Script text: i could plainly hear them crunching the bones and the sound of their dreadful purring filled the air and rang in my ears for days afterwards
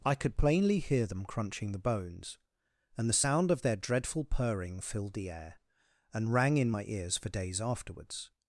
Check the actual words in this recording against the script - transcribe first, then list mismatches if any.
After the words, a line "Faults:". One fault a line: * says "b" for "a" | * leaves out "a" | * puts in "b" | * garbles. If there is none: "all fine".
i could plainly hear them crunching the bones and the sound of their dreadful purring filled the air and rang in my ears for days afterwards
Faults:
all fine